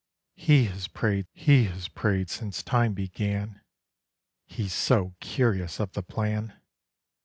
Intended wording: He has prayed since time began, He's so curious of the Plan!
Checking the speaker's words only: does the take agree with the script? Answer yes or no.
no